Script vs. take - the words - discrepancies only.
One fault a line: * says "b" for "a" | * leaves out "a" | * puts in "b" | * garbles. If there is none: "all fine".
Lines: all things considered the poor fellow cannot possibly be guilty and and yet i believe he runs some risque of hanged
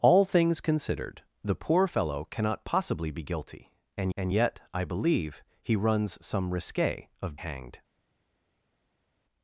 all fine